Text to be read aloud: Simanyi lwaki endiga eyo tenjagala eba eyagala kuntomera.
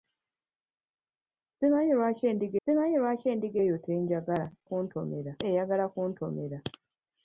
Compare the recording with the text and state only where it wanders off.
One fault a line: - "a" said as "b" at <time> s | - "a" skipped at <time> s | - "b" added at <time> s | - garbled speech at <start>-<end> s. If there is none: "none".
- "simanyi lwaki endiga" added at 2.6 s
- "eba" said as "kuntomera" at 4.7 s